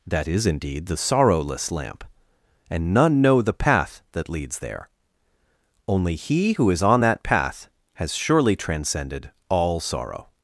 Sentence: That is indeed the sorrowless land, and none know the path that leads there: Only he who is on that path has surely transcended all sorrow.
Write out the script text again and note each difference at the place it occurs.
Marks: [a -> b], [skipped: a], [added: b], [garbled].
That is indeed the sorrowless [land, -> lamp] and none know the path that leads there: Only he who is on that path has surely transcended all sorrow.